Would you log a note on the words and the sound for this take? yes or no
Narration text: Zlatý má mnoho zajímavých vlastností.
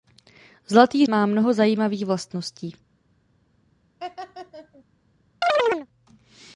yes